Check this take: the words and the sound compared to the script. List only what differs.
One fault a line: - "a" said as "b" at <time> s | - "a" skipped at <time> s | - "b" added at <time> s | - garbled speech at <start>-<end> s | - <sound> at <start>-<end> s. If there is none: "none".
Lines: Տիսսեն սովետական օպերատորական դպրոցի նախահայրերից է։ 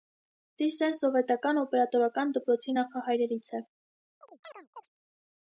- chirp at 4.2-4.9 s